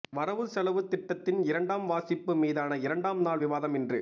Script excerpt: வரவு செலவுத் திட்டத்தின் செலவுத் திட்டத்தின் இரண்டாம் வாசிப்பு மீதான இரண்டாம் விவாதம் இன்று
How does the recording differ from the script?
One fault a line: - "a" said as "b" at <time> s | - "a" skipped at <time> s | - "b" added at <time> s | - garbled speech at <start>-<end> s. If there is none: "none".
- "செலவுத் திட்டத்தின்" skipped at 1.4 s
- "நாள்" added at 3.2 s